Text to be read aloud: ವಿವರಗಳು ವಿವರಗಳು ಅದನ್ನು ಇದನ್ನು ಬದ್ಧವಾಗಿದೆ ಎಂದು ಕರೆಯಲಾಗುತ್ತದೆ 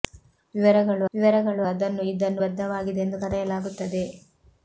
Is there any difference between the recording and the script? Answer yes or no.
no